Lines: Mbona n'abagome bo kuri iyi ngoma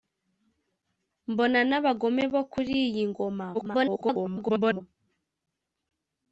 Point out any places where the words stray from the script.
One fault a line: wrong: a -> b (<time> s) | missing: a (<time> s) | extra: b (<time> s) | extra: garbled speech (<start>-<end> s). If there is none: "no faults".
extra: garbled speech (3.5-4.8 s)